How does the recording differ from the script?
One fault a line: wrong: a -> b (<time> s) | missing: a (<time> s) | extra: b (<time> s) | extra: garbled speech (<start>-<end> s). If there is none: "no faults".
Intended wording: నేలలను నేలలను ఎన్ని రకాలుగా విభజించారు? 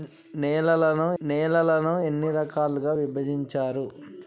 no faults